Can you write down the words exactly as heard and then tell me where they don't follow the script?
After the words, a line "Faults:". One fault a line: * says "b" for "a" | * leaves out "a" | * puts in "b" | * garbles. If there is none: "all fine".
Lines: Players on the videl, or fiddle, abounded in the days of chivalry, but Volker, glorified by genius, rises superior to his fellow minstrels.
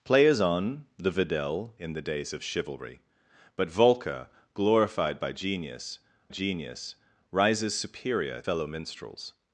Players on the videl, in the days of chivalry, but Volker, glorified by genius genius, rises superior fellow minstrels.
Faults:
* leaves out "or fiddle abounded"
* puts in "genius"
* leaves out "to his"